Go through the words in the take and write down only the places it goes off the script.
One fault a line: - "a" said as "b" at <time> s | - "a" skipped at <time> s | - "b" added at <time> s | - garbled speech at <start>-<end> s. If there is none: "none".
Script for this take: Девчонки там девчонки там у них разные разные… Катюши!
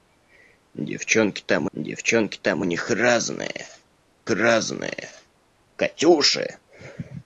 none